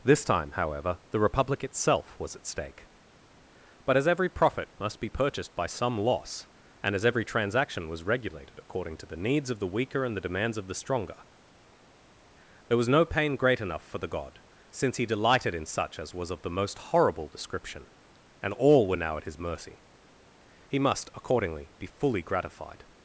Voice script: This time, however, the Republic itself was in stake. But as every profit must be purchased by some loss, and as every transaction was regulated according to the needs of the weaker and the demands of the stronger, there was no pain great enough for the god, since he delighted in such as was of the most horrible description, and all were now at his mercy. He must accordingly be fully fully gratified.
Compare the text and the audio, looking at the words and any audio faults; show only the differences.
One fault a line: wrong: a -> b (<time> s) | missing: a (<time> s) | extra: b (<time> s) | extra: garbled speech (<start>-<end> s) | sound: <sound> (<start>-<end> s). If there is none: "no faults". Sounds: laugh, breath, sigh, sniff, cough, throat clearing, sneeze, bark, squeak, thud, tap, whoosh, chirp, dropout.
wrong: in -> at (2.4 s)
missing: fully (22.2 s)